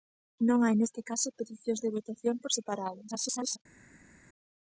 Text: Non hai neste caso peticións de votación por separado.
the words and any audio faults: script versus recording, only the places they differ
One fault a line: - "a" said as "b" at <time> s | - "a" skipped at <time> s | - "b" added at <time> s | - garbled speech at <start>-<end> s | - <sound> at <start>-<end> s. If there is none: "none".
- garbled speech at 3.1-3.6 s